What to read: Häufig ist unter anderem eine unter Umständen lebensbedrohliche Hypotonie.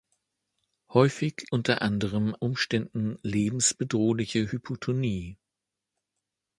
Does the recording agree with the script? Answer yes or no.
no